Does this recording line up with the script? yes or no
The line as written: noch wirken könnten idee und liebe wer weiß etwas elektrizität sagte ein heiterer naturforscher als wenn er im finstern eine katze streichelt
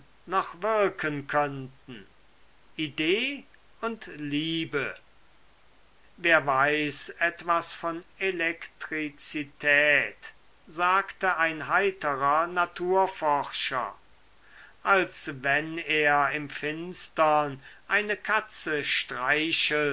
no